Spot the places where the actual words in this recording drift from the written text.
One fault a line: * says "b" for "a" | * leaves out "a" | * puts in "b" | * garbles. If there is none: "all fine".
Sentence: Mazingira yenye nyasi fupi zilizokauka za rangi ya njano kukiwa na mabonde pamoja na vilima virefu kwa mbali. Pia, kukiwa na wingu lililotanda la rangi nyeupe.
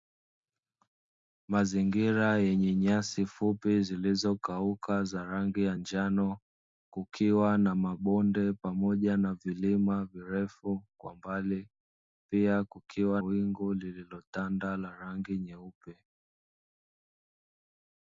* leaves out "na"